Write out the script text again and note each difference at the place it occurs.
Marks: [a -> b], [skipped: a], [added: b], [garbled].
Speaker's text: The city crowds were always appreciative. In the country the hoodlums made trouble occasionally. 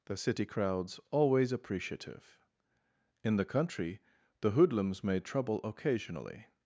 The city crowds [skipped: were] always appreciative. In the country the hoodlums made trouble occasionally.